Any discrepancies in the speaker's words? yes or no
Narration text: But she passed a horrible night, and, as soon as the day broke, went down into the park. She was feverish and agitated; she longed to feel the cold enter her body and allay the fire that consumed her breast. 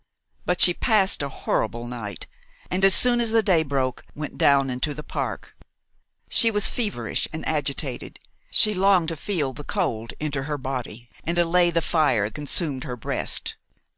yes